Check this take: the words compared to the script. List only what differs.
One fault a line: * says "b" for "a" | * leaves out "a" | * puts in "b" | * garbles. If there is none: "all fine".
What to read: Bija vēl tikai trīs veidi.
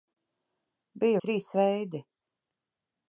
* leaves out "vēl tikai"